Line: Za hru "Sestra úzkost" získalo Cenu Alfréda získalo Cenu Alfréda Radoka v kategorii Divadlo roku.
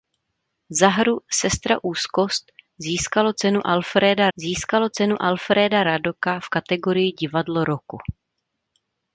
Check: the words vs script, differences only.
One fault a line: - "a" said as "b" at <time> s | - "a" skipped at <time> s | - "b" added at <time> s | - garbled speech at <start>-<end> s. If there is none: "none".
none